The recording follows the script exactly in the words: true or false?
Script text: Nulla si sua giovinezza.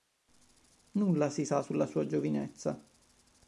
false